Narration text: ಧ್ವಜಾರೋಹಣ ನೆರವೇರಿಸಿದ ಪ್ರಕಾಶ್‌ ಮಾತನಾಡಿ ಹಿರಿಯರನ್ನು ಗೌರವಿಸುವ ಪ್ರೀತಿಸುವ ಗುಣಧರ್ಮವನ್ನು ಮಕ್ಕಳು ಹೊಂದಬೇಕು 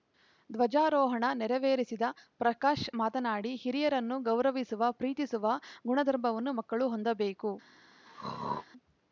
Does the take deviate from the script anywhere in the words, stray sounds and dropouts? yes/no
yes